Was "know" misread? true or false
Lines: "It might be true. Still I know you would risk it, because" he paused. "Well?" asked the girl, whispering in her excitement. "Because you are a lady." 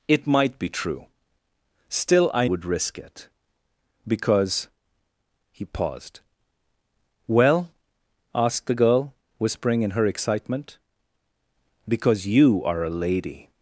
true